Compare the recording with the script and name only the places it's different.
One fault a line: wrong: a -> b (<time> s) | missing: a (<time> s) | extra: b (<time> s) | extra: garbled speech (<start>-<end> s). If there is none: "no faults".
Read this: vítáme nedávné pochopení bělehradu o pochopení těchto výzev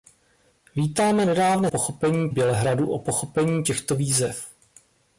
no faults